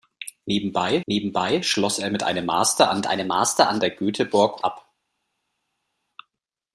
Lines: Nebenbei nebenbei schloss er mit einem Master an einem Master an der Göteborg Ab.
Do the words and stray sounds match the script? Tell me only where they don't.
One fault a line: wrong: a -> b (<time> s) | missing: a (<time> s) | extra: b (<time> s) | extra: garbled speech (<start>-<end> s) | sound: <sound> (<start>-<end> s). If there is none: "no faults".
no faults